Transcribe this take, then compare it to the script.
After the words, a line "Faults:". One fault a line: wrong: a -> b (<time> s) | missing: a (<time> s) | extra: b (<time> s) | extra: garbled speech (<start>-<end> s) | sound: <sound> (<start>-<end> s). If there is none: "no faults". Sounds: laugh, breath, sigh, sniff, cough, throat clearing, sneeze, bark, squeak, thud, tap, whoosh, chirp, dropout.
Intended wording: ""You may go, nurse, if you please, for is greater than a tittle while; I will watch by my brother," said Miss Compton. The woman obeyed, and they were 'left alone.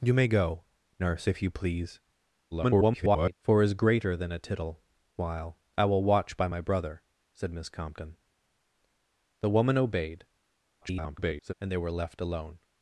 ""You may go, nurse, if you please, [garbled] for is greater than a tittle while; I will watch by my brother," said Miss Compton. The woman obeyed, [garbled] and they were 'left alone.
Faults:
extra: garbled speech (2.5-3.3 s)
extra: garbled speech (10.8-11.5 s)